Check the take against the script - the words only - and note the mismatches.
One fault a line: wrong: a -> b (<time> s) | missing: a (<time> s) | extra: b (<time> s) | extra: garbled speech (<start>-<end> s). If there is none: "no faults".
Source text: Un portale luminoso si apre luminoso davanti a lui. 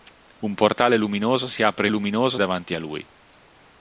no faults